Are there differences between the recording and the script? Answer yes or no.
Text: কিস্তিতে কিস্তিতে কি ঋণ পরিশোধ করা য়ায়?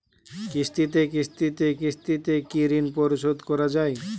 yes